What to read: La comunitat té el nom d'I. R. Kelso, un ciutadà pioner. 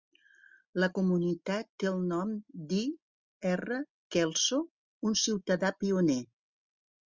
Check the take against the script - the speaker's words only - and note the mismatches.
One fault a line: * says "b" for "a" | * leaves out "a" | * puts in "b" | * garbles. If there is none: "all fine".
all fine